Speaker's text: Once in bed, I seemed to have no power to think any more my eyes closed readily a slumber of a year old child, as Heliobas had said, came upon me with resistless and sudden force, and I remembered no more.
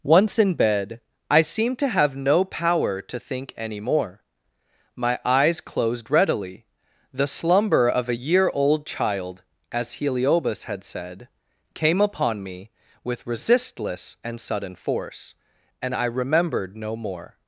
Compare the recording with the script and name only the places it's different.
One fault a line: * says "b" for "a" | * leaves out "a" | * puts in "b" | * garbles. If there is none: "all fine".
* says "the" for "a"